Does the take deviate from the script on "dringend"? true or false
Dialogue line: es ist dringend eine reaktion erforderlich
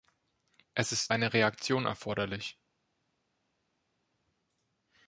true